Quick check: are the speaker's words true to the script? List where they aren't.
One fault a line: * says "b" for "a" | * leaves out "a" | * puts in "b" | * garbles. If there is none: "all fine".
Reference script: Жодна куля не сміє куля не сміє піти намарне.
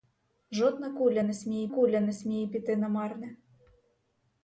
all fine